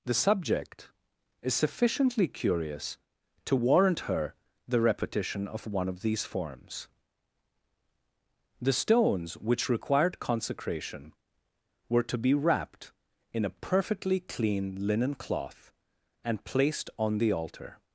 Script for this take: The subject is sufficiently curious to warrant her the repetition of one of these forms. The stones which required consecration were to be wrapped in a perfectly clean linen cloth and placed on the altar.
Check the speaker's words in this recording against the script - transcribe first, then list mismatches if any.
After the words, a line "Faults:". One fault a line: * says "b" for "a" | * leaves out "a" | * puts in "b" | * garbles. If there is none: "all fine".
The subject is sufficiently curious to warrant her the repetition of one of these forms. The stones which required consecration were to be wrapped in a perfectly clean linen cloth and placed on the altar.
Faults:
all fine